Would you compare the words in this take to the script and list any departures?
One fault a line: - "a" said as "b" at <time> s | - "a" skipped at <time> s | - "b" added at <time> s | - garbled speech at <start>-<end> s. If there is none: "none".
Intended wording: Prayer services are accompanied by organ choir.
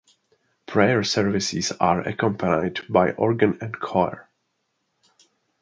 - "and" added at 3.6 s